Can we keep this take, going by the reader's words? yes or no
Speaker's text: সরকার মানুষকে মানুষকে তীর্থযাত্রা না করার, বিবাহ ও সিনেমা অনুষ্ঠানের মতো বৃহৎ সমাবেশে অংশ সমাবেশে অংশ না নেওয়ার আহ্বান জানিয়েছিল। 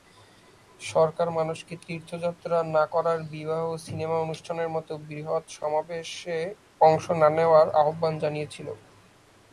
no